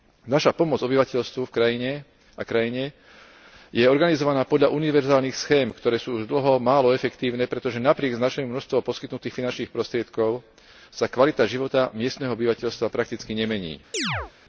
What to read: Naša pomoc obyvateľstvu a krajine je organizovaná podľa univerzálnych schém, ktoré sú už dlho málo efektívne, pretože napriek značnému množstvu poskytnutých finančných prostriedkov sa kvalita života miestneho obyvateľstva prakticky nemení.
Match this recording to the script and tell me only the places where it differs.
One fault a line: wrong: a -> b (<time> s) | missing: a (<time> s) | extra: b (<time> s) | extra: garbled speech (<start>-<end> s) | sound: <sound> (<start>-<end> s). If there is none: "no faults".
sound: chirp (13.9-14.3 s)